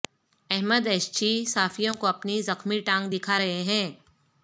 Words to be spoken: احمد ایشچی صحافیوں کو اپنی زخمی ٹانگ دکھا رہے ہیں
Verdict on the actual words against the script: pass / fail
pass